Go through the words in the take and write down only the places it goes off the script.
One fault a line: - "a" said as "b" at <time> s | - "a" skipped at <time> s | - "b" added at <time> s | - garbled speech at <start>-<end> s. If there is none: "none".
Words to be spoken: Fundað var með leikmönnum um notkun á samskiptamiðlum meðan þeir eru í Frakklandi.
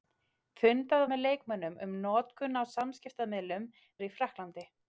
- "var" skipped at 1.0 s
- "meðan þeir" skipped at 3.7 s